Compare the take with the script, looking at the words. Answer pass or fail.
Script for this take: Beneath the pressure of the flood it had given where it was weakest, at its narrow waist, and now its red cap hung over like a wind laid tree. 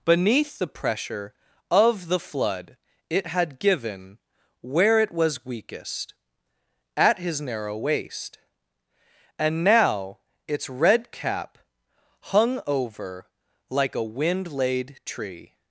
fail